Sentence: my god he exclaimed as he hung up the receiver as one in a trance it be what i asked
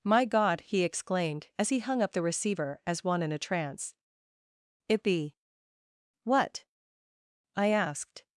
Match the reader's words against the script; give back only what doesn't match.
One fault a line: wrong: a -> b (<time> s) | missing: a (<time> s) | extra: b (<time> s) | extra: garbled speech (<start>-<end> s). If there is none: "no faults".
no faults